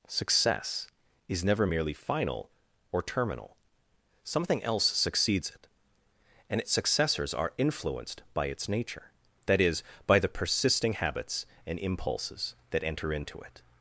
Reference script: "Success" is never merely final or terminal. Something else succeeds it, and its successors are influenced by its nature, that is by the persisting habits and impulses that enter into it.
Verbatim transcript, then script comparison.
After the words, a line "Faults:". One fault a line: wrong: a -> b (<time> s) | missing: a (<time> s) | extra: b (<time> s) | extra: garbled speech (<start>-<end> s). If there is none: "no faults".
"Success" is never merely final or terminal. Something else succeeds it, and its successors are influenced by its nature, that is by the persisting habits and impulses that enter into it.
Faults:
no faults